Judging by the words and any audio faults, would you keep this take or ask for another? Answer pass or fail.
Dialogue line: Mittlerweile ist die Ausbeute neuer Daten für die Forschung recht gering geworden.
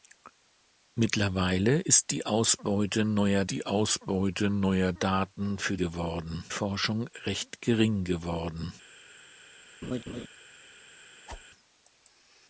fail